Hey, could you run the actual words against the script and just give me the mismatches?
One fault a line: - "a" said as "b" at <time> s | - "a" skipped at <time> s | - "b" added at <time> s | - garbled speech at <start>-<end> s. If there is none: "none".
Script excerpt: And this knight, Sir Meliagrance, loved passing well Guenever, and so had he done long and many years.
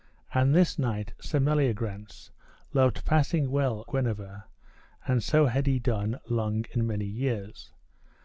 none